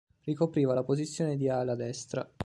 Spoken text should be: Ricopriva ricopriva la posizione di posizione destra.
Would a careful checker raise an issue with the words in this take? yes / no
yes